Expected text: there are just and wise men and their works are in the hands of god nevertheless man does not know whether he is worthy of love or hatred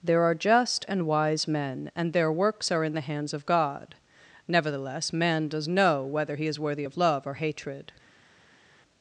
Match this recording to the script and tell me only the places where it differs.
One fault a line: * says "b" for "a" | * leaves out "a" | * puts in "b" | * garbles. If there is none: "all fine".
* leaves out "not"